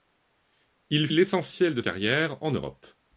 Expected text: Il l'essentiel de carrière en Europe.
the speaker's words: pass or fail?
pass